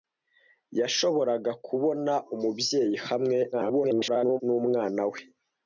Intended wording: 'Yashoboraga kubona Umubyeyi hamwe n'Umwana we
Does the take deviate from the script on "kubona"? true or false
false